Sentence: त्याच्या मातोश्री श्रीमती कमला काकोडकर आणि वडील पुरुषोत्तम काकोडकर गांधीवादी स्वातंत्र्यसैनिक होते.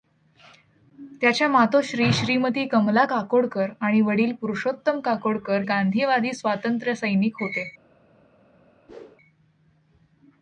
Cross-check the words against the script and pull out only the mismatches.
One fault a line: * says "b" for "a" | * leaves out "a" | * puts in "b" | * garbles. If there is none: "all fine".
all fine